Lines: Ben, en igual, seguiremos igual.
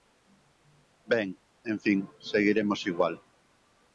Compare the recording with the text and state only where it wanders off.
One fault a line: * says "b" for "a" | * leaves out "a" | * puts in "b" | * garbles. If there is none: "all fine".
* says "fin" for "igual"